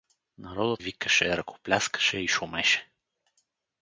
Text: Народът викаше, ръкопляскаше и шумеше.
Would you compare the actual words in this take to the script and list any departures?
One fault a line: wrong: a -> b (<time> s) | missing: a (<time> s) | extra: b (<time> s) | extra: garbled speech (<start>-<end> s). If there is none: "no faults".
no faults